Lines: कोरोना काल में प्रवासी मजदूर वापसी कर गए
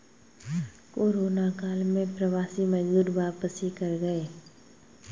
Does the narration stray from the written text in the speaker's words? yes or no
no